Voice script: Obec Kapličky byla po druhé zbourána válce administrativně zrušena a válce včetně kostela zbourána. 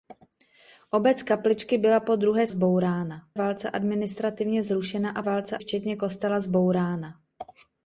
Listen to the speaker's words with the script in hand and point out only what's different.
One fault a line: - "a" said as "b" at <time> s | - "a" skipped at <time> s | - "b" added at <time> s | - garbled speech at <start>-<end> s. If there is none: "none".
none